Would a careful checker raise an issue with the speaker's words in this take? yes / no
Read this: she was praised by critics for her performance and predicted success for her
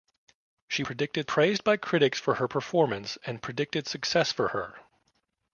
yes